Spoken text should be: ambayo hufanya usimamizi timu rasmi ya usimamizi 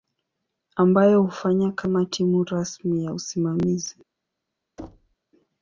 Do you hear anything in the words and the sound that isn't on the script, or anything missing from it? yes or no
yes